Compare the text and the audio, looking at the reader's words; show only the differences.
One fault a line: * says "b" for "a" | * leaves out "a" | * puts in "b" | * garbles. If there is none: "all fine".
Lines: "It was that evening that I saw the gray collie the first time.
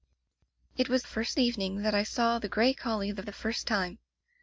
* says "first" for "that"
* puts in "the"